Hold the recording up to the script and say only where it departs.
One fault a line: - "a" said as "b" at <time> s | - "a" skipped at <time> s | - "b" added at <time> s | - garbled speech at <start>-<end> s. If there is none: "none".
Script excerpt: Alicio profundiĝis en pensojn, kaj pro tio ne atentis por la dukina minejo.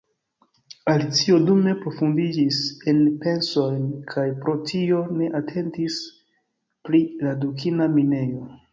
- "dume" added at 1.5 s
- "por" said as "pri" at 6.9 s